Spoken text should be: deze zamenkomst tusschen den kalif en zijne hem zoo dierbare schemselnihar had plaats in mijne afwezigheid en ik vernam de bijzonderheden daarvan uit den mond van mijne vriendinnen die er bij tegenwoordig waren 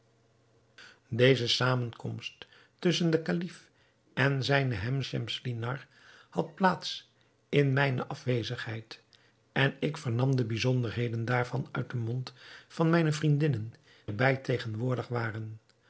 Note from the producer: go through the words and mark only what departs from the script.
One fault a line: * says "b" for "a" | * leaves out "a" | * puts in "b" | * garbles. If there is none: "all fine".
* leaves out "zoo dierbare"
* leaves out "die"